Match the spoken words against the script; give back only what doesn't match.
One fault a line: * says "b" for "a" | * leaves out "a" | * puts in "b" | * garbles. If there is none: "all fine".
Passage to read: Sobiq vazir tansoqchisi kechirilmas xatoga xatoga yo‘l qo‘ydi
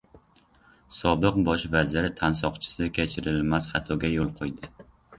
* puts in "bosh"
* leaves out "xatoga"